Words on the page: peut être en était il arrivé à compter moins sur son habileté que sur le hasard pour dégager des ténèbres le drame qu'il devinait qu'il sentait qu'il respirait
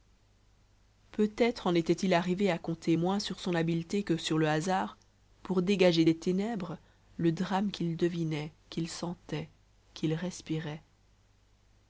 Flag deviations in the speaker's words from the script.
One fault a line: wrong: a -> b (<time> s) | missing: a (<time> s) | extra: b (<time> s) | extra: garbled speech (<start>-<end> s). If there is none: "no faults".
no faults